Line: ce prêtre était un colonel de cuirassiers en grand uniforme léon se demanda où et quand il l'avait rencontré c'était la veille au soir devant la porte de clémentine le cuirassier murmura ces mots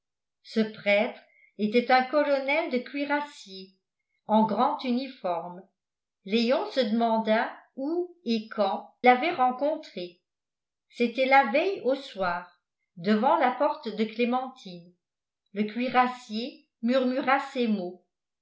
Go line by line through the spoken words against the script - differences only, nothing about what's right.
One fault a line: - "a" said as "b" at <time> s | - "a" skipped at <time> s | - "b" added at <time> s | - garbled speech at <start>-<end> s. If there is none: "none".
- "il" skipped at 8.9 s